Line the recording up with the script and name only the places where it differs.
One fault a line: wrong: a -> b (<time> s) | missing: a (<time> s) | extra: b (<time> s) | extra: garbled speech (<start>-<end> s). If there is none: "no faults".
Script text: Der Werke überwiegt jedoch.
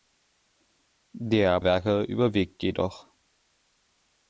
no faults